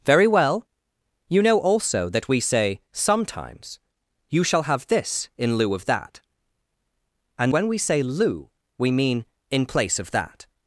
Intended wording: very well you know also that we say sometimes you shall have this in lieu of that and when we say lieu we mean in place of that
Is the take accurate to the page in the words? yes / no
yes